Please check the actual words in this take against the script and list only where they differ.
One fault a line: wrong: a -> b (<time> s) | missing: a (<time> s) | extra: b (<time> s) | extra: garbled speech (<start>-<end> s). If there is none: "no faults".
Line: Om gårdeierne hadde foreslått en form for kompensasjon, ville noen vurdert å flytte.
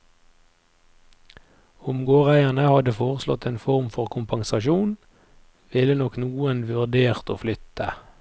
extra: nok (5.9 s)